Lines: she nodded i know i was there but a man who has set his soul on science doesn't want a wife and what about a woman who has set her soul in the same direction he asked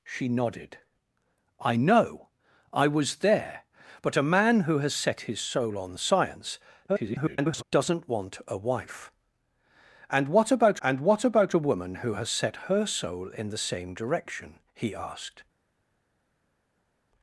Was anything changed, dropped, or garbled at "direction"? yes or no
no